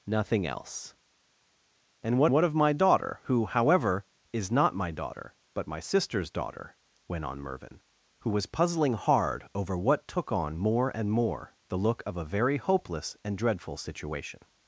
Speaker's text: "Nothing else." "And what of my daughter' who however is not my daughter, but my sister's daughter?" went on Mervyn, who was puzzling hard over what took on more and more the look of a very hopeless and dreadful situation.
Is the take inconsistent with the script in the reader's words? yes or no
yes